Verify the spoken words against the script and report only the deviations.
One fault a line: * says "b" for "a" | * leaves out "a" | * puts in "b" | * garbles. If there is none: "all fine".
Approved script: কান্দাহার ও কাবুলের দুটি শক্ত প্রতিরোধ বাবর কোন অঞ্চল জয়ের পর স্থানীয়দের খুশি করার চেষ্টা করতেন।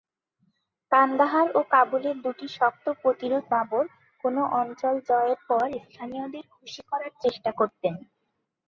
all fine